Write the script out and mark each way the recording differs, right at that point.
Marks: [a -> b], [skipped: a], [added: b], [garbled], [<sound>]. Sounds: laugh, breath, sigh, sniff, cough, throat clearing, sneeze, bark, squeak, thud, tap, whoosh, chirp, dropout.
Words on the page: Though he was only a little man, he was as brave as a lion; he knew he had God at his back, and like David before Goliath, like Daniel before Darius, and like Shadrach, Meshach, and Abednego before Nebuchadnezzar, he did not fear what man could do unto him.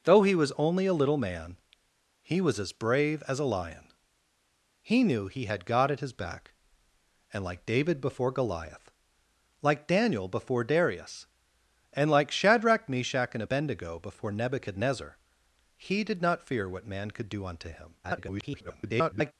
Though he was only a little man, he was as brave as a lion; he knew he had God at his back, and like David before Goliath, like Daniel before Darius, and like Shadrach, Meshach, and Abednego before Nebuchadnezzar, he did not fear what man could do unto him. [garbled]